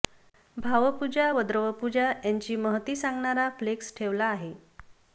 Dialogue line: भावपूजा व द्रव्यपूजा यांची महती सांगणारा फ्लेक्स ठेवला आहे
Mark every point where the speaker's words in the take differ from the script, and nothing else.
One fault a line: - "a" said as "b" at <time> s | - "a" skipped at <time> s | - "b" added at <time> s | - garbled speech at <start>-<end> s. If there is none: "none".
none